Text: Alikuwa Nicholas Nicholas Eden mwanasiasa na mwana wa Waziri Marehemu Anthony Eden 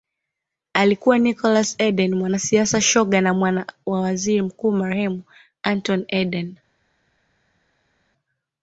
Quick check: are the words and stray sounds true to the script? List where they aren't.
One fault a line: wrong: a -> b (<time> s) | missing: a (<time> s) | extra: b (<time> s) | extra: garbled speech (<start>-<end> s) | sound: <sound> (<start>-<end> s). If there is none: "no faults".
missing: Nicholas (1.8 s)
extra: shoga (2.8 s)
extra: Mkuu (4.4 s)